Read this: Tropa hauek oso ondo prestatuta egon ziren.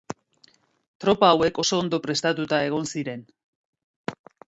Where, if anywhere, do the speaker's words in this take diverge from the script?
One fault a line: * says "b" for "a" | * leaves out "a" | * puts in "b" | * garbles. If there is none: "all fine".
all fine